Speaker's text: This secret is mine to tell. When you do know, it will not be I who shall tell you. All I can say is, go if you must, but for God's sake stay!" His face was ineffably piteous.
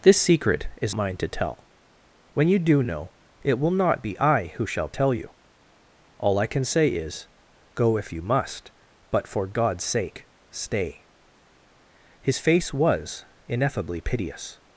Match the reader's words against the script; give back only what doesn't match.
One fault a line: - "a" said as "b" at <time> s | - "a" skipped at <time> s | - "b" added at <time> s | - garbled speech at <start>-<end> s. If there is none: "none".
none